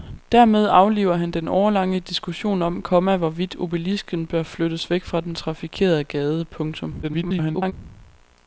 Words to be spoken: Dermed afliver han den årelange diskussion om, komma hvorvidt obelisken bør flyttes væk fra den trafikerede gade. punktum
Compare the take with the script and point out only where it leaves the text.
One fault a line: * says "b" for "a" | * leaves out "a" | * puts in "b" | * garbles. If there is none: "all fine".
* garbles